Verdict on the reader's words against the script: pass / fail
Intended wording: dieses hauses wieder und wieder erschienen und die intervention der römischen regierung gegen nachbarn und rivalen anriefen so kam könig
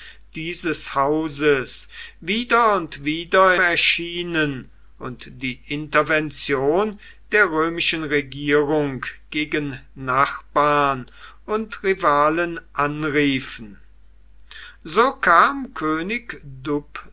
pass